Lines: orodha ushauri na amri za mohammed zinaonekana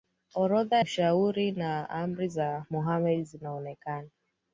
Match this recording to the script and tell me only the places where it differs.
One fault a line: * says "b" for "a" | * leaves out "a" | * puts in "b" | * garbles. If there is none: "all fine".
all fine